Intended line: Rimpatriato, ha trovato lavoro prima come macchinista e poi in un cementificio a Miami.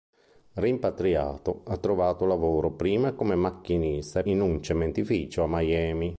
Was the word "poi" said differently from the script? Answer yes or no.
yes